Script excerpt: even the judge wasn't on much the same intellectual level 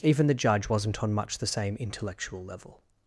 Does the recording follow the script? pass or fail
pass